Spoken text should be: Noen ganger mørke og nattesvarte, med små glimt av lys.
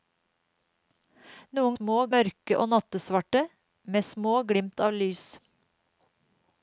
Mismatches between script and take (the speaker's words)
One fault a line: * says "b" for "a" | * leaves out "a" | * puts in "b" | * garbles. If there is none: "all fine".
* says "små" for "ganger"